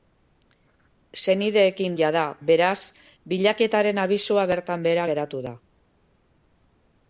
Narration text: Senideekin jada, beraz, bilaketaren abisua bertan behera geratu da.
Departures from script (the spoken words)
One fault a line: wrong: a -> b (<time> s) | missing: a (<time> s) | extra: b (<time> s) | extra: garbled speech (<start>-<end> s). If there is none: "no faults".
no faults